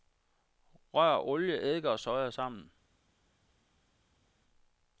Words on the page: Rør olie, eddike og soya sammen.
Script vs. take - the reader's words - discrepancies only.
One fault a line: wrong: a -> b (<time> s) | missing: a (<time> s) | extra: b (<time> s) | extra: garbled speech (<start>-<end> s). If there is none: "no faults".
no faults